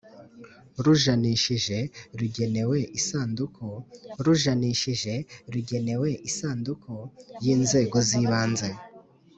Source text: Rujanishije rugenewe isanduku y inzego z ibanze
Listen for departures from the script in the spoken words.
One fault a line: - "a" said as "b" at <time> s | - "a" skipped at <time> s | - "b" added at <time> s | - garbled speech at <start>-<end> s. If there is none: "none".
- "rujanishije rugenewe isanduku" added at 4.2 s